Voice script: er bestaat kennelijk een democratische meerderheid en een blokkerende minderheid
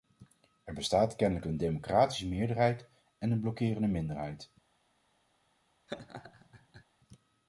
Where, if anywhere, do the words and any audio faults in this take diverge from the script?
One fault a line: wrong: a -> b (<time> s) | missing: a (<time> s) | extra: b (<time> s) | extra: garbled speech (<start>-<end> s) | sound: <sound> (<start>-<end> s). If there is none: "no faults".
sound: laugh (5.9-6.8 s)